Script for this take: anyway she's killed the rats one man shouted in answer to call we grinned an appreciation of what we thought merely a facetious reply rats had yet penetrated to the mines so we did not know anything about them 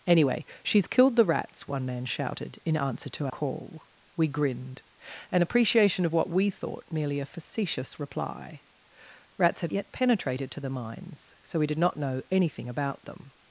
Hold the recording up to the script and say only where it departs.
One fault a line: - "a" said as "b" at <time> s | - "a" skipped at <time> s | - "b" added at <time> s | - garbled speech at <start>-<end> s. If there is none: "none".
none